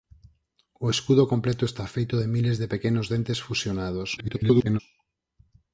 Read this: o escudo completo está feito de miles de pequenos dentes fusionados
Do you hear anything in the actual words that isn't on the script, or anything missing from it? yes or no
yes